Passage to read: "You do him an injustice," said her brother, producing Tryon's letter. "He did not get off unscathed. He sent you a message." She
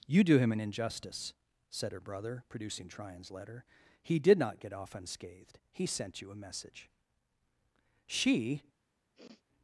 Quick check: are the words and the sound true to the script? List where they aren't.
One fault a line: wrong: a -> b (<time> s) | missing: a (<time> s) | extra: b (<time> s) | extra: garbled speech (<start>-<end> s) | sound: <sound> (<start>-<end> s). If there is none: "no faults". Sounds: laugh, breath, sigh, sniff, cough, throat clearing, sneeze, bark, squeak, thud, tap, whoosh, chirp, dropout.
sound: sniff (9.1-9.4 s)